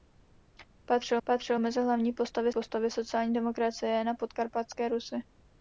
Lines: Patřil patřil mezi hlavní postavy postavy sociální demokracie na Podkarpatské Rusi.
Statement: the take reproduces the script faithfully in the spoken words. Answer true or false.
true